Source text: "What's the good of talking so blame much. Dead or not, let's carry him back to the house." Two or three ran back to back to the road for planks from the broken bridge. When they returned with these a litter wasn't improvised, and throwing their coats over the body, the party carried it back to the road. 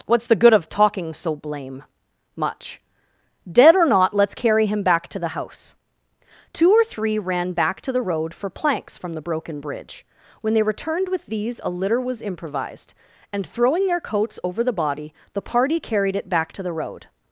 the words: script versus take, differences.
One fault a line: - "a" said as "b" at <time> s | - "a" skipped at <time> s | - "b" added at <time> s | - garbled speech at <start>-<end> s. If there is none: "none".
- "back to" skipped at 7.9 s
- "wasn't" said as "was" at 12.0 s